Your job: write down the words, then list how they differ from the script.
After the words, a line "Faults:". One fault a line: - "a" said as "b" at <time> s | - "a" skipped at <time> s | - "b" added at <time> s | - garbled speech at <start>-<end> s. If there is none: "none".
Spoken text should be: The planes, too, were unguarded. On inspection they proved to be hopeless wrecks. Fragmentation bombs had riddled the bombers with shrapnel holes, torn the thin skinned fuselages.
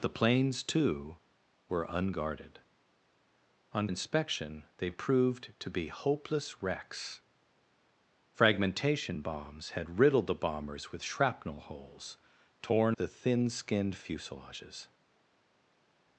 The planes, too, were unguarded. On inspection they proved to be hopeless wrecks. Fragmentation bombs had riddled the bombers with shrapnel holes, torn the thin skinned fuselages.
Faults:
none